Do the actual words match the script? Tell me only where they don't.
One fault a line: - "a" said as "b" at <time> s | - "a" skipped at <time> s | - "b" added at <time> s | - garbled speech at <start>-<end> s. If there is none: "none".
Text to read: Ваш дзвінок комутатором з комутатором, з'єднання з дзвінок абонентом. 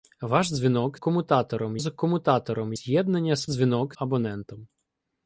none